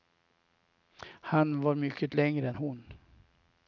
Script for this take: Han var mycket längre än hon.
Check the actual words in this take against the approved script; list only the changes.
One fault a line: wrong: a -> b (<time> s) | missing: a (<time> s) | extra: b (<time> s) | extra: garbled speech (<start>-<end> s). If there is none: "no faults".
no faults